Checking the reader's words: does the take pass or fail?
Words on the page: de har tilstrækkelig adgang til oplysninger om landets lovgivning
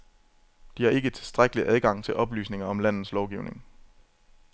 fail